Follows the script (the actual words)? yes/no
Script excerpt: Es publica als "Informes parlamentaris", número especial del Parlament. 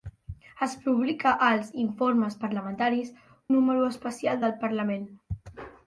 yes